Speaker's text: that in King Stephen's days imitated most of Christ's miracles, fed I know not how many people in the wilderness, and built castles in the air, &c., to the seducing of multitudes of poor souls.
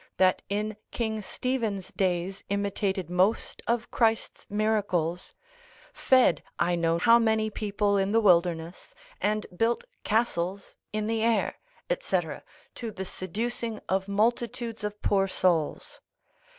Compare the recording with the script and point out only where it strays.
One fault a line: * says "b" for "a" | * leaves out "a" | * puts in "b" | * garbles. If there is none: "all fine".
* leaves out "not"